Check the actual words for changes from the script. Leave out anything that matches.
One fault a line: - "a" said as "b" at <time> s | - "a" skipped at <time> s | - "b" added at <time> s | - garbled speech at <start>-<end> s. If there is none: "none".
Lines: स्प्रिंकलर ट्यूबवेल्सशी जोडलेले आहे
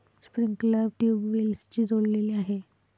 none